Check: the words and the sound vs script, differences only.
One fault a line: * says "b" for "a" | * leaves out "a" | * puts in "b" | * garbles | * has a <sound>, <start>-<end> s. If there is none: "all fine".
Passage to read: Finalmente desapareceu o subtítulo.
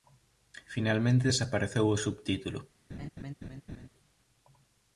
* has a laugh, 2.9-3.9 s